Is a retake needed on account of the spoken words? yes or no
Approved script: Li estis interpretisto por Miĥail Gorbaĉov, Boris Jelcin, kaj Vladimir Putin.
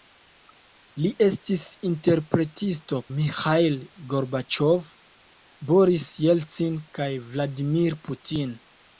yes